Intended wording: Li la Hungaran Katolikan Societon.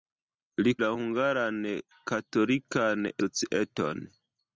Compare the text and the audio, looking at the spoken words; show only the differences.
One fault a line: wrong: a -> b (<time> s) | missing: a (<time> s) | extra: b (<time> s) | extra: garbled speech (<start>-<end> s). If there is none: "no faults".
no faults